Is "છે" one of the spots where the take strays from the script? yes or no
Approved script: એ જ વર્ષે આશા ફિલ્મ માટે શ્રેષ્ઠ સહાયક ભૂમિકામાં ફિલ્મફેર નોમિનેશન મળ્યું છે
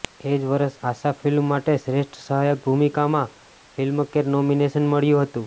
yes